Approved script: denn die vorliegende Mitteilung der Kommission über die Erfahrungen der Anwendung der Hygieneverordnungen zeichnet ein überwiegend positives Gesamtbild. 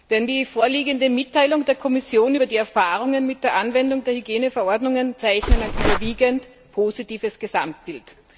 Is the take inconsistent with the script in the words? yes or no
yes